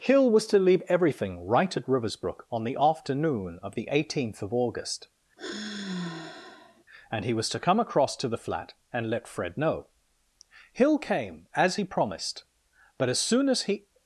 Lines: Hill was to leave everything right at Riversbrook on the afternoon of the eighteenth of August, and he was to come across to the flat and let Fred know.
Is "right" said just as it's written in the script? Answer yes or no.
yes